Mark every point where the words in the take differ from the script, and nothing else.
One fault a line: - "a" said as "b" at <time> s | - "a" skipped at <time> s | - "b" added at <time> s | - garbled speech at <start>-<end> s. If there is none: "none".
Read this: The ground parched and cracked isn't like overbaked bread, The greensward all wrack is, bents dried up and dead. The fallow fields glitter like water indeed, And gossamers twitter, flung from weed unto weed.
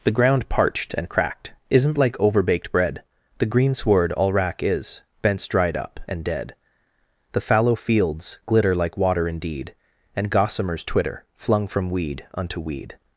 none